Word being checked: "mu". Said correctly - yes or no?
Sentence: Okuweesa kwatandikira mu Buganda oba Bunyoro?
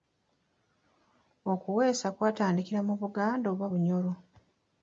yes